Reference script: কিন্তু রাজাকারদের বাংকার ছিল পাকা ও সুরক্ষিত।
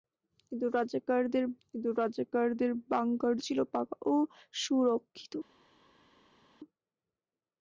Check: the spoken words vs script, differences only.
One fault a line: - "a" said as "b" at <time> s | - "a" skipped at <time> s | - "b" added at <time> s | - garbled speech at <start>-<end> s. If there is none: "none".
- "কিন্তু রাজাকারদের" added at 1.7 s